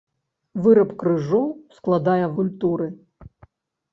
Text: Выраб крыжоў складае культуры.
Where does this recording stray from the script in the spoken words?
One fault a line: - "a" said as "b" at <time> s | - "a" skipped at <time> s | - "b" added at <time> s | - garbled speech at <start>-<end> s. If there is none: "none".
none